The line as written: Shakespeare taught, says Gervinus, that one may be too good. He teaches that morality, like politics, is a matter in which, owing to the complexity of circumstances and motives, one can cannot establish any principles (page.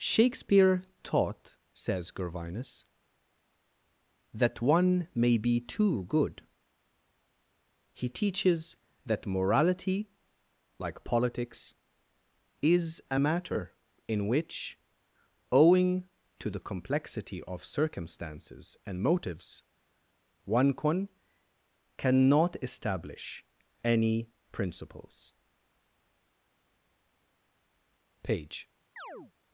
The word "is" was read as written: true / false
true